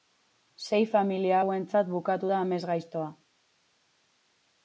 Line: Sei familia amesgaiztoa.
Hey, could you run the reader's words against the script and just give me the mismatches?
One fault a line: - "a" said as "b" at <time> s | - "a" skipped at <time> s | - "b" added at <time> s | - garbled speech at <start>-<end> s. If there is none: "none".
- "hauentzat bukatu da" added at 1.4 s